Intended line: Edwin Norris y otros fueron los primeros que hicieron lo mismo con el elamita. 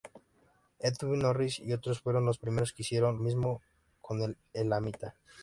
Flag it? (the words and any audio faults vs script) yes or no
yes